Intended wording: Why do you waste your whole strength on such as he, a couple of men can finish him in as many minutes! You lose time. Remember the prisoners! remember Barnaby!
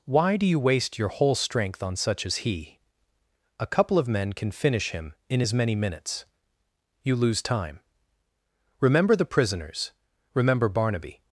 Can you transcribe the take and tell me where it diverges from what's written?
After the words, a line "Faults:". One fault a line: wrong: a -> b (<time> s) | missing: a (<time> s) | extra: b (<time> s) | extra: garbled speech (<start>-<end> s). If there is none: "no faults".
Why do you waste your whole strength on such as he, a couple of men can finish him in as many minutes! You lose time. Remember the prisoners! remember Barnaby!
Faults:
no faults